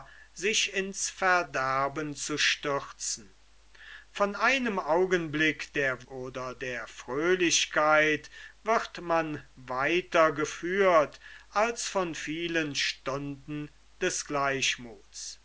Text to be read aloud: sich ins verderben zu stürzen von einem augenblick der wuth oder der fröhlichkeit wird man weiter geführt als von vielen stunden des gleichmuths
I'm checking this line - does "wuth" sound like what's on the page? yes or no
no